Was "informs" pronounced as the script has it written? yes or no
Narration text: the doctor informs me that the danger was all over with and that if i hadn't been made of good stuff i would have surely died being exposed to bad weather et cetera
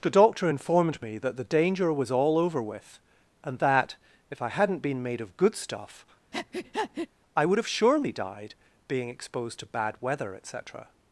no